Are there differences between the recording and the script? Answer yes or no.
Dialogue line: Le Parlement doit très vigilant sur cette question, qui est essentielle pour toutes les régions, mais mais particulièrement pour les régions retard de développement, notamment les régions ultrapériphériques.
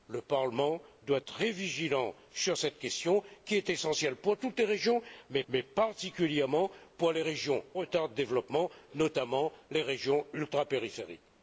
no